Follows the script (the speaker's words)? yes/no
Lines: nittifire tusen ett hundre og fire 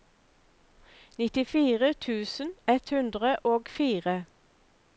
yes